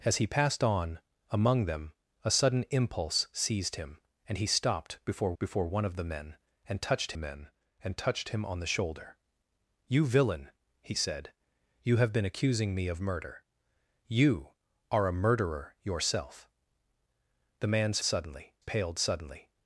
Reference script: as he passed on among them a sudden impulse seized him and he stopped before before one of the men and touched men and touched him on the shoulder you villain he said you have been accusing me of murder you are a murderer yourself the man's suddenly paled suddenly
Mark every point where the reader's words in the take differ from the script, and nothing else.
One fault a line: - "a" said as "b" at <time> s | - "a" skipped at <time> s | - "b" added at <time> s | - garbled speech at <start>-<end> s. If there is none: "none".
none